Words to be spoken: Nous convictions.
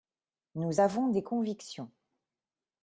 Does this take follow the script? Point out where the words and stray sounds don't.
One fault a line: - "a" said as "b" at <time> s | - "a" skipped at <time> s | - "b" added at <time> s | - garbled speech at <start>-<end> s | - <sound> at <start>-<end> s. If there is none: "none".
- "avons des" added at 0.8 s